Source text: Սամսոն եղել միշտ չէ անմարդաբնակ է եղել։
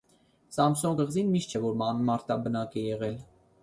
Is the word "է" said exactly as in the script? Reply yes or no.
yes